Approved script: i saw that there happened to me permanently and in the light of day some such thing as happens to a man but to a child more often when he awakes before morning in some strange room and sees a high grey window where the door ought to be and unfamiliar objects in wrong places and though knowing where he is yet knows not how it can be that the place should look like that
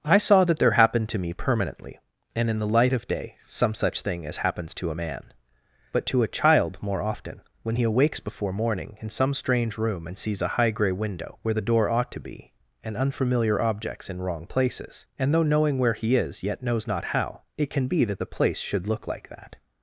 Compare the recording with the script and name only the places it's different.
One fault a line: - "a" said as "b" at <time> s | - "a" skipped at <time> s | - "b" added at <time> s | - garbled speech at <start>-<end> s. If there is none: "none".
none